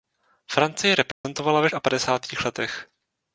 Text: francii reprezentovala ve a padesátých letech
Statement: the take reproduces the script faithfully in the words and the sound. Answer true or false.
false